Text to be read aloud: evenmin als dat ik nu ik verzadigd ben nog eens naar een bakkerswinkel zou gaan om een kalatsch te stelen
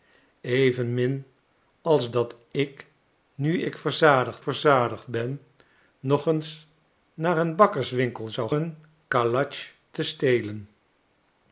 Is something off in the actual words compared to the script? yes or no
yes